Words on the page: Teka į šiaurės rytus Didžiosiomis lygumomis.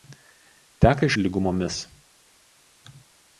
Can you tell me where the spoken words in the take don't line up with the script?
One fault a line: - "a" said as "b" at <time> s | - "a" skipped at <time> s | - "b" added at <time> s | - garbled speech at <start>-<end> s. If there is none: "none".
- "šiaurės rytus Didžiosiomis" skipped at 1.1 s